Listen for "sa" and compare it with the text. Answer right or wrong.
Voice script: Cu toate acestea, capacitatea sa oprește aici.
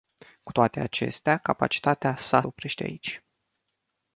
right